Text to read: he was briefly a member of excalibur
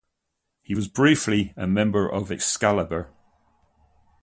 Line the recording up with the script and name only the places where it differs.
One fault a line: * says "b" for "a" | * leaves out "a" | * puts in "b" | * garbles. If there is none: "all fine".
all fine